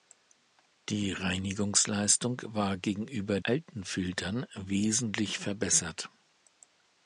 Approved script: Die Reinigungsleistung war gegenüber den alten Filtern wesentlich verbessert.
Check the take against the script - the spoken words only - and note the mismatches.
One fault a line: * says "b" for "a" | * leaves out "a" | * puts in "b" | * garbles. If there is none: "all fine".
* leaves out "den"